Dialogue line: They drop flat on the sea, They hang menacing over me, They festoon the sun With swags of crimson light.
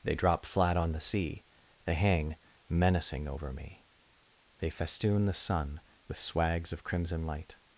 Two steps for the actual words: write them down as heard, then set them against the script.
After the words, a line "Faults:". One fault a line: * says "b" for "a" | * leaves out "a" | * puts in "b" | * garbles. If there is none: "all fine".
They drop flat on the sea, They hang menacing over me, They festoon the sun With swags of crimson light.
Faults:
all fine